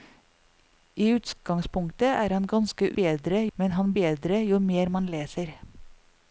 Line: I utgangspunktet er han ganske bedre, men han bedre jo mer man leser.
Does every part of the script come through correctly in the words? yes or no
yes